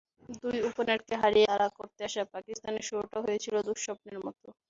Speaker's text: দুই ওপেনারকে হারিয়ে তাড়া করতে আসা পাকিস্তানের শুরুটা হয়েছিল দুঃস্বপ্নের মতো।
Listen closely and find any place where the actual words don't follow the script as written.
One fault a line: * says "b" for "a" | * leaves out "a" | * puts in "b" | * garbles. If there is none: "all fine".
all fine